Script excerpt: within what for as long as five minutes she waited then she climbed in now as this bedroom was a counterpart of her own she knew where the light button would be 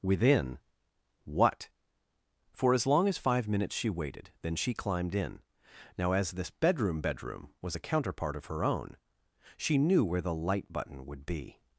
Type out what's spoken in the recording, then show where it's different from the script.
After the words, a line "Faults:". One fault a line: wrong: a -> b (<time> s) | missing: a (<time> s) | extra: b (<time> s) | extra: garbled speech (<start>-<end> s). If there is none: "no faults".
within what for as long as five minutes she waited then she climbed in now as this bedroom bedroom was a counterpart of her own she knew where the light button would be
Faults:
extra: bedroom (7.0 s)